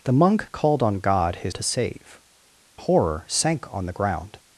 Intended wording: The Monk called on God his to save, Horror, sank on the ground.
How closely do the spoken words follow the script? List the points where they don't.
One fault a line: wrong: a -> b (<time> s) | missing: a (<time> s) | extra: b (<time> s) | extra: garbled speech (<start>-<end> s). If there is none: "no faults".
no faults